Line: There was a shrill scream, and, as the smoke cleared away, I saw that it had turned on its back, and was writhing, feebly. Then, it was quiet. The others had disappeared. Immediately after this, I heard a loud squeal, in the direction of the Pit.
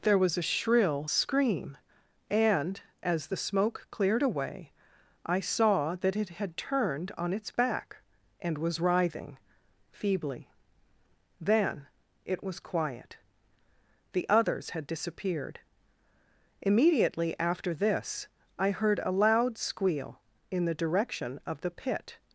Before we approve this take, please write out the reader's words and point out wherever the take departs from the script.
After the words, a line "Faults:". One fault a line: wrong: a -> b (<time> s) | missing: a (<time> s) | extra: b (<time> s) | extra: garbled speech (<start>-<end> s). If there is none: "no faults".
There was a shrill scream, and, as the smoke cleared away, I saw that it had turned on its back, and was writhing, feebly. Then, it was quiet. The others had disappeared. Immediately after this, I heard a loud squeal, in the direction of the Pit.
Faults:
no faults